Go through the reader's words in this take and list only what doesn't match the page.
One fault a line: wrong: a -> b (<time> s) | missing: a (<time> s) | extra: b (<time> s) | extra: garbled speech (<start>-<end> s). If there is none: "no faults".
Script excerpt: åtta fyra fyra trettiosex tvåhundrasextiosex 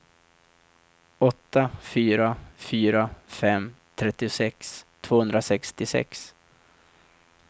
extra: fem (3.3 s)